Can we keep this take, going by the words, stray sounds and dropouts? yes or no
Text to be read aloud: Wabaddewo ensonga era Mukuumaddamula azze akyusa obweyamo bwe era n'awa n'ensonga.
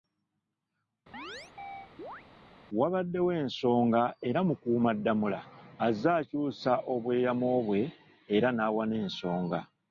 no